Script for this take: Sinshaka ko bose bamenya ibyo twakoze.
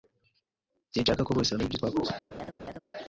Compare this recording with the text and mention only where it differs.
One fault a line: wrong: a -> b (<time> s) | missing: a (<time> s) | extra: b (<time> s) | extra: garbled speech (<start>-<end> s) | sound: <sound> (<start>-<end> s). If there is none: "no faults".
sound: laugh (2.3-2.8 s)